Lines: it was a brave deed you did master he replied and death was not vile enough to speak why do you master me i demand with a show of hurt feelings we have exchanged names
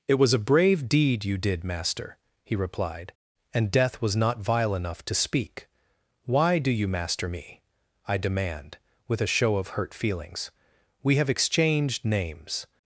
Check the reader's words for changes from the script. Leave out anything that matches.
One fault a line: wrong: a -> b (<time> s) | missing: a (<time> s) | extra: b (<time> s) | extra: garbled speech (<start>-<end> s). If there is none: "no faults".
no faults